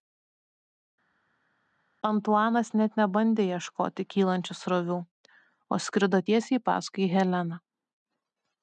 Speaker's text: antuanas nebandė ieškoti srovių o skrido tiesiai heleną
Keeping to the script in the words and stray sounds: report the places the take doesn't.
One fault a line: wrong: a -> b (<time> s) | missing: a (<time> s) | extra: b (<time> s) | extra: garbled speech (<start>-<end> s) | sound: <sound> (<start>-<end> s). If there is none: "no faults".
extra: net (2.8 s)
extra: kylančių (4.1 s)
extra: paskui (6.7 s)